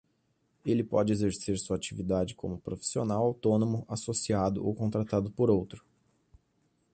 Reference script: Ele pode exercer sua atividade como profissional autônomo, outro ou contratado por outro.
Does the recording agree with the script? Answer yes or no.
no